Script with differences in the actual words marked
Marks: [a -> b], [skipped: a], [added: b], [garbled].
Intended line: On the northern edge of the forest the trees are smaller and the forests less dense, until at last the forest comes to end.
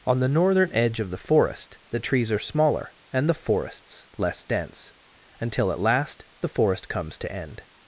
On the northern edge of the forest the trees are smaller and the forests less dense, until at last the forest comes to end.